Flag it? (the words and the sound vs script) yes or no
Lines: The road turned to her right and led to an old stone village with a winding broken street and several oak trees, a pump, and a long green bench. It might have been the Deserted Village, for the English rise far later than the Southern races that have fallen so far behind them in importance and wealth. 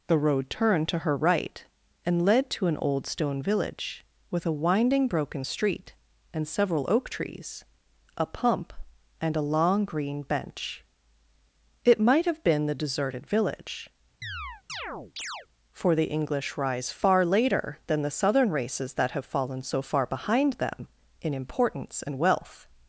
yes